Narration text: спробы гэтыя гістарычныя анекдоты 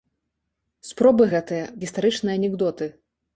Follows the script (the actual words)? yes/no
yes